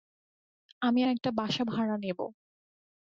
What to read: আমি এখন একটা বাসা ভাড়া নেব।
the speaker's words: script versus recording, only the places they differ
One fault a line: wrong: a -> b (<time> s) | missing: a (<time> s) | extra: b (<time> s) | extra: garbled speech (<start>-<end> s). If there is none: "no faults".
missing: এখন (1.0 s)